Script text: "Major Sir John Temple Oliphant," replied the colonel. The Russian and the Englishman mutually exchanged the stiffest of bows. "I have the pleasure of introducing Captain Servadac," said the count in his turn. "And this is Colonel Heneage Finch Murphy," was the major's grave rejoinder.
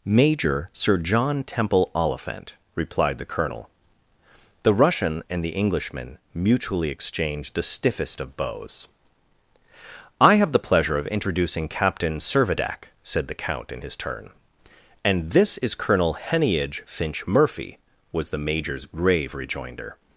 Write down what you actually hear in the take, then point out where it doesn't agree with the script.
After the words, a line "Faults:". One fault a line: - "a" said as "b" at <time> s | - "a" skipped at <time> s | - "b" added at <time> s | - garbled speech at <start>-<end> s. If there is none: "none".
"Major Sir John Temple Oliphant," replied the colonel. The Russian and the Englishman mutually exchanged the stiffest of bows. "I have the pleasure of introducing Captain Servadac," said the count in his turn. "And this is Colonel Heneage Finch Murphy," was the major's grave rejoinder.
Faults:
none